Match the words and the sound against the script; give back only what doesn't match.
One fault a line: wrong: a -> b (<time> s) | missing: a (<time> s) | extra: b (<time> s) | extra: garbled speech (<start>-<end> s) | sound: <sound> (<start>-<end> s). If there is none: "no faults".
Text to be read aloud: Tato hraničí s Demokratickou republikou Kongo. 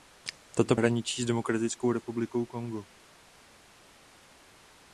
no faults